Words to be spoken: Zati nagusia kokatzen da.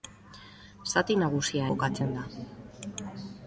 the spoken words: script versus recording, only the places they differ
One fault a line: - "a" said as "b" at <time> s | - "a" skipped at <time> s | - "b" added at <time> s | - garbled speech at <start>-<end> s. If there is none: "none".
none